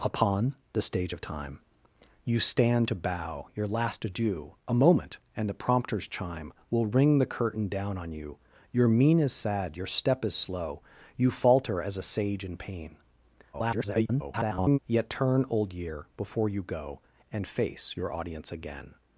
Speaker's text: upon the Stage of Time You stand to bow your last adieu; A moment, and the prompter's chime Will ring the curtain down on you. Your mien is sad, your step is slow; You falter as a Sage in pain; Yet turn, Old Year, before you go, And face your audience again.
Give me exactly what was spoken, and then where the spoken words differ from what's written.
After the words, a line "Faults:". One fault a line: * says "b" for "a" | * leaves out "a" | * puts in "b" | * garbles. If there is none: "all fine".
upon the Stage of Time You stand to bow your last adieu; A moment, and the prompter's chime Will ring the curtain down on you. Your mien is sad, your step is slow; You falter as a Sage in pain; [garbled] Yet turn, Old Year, before you go, And face your audience again.
Faults:
* garbles